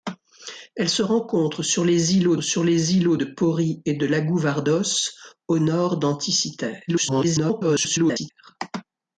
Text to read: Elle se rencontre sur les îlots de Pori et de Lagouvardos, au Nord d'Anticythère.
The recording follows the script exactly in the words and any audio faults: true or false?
false